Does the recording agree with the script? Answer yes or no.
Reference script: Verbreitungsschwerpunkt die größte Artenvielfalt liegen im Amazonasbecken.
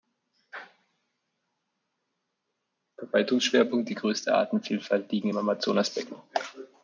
yes